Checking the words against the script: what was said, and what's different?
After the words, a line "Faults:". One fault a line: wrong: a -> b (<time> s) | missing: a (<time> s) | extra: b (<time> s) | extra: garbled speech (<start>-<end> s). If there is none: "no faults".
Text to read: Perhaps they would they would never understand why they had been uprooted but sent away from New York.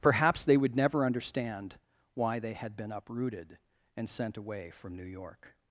Perhaps they would never understand why they had been uprooted and sent away from New York.
Faults:
missing: they would (0.8 s)
wrong: but -> and (4.0 s)